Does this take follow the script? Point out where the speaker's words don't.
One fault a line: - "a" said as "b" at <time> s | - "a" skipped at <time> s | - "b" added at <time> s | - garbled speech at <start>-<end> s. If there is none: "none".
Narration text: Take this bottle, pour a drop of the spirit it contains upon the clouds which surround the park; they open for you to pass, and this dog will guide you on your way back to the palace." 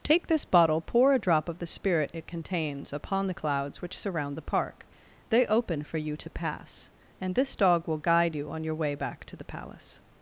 none